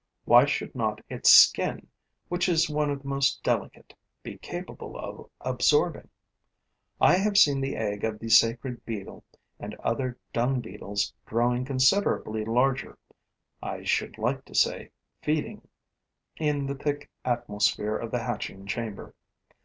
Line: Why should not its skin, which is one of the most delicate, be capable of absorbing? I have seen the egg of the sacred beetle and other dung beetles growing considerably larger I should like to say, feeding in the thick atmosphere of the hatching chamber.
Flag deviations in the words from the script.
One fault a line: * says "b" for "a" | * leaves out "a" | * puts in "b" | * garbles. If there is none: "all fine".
all fine